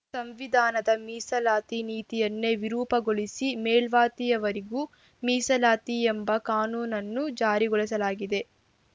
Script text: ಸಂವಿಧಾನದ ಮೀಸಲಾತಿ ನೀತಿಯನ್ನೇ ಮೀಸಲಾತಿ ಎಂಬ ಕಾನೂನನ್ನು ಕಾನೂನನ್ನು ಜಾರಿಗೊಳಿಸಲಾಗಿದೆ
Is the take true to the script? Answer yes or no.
no